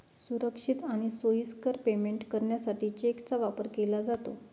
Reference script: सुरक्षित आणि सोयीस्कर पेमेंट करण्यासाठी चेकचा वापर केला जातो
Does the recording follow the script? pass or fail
pass